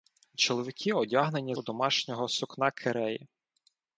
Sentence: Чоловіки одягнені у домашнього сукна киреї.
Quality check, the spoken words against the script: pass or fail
pass